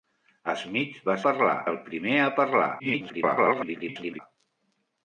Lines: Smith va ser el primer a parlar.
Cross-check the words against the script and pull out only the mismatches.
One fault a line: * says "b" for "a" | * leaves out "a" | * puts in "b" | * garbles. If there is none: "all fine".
* says "parlar" for "ser"
* garbles